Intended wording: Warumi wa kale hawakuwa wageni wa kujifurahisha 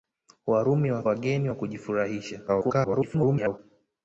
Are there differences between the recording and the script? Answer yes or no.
yes